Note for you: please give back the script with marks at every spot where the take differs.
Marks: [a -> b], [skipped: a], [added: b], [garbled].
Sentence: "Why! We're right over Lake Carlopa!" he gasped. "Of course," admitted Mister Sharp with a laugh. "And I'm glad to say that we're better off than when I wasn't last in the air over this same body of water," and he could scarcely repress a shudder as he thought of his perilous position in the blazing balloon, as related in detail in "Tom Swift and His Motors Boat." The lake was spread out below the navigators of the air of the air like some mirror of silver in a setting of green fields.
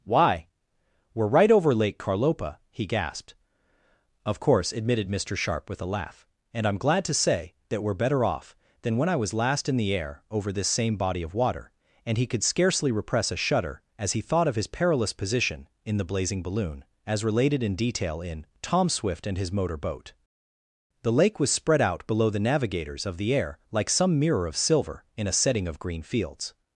"Why! We're right over Lake Carlopa!" he gasped. "Of course," admitted Mister Sharp with a laugh. "And I'm glad to say that we're better off than when I [wasn't -> was] last in the air over this same body of water," and he could scarcely repress a shudder as he thought of his perilous position in the blazing balloon, as related in detail in "Tom Swift and His [Motors -> Motor] Boat." The lake was spread out below the navigators of the air [skipped: of the air] like some mirror of silver in a setting of green fields.